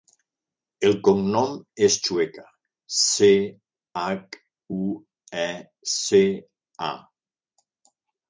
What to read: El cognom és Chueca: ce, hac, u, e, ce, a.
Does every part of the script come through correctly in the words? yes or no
yes